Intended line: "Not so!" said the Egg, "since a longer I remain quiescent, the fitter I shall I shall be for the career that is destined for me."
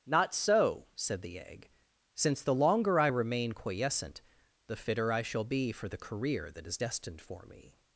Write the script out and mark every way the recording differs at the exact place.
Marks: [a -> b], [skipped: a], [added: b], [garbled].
"Not so!" said the Egg, "since [a -> the] longer I remain quiescent, the fitter I shall [skipped: I shall] be for the career that is destined for me."